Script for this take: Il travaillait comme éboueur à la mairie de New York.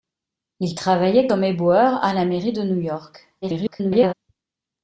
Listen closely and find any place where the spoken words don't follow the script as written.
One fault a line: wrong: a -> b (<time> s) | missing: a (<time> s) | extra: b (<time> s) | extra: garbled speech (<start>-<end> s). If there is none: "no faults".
extra: garbled speech (3.4-4.1 s)